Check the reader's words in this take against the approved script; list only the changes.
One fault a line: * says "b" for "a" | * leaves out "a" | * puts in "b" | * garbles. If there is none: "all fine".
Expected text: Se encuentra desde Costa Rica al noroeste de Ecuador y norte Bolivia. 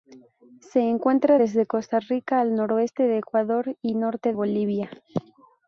all fine